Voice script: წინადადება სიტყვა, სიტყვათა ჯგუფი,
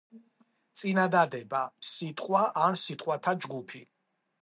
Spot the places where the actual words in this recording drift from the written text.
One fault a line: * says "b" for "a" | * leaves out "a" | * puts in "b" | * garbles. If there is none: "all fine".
* puts in "ან"